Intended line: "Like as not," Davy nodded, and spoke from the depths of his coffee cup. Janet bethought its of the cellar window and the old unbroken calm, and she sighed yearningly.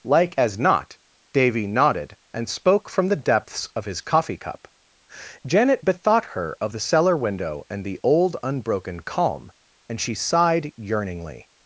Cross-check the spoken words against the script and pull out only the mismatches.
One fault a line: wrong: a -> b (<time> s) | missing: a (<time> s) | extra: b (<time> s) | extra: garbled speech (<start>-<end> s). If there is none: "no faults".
wrong: its -> her (6.4 s)